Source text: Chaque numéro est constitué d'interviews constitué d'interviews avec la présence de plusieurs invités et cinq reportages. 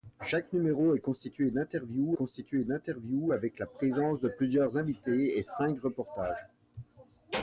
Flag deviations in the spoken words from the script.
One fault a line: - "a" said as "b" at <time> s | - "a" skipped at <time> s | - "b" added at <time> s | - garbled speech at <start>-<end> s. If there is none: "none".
none